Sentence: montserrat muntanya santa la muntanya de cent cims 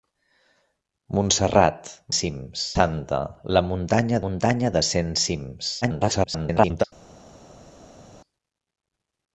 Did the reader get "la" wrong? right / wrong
right